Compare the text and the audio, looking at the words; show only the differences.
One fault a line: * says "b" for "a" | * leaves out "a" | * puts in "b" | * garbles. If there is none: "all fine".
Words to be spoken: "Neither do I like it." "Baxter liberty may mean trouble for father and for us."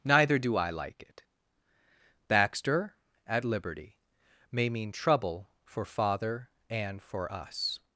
* puts in "at"